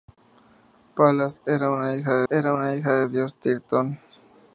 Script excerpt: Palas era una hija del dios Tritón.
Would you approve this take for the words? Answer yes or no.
no